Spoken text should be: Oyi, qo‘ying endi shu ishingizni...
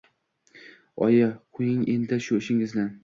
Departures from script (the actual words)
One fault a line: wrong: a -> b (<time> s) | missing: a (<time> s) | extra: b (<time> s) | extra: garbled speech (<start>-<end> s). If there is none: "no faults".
no faults